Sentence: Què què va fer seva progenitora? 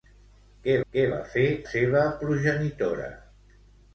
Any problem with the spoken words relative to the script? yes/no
no